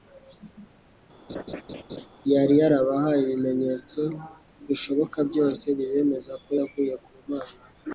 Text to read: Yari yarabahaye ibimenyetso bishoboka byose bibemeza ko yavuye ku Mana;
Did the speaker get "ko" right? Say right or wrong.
right